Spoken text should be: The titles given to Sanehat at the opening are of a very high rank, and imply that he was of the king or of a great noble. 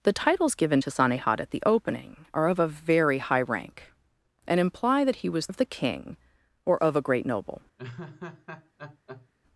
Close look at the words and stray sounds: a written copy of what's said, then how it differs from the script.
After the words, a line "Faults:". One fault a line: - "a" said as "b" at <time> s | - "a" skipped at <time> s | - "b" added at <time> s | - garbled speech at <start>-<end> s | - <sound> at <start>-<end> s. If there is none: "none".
The titles given to Sanehat at the opening are of a very high rank, and imply that he was of the king or of a great noble.
Faults:
- laugh at 7.8-9.3 s